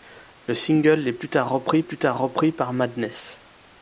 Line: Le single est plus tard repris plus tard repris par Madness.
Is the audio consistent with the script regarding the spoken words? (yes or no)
yes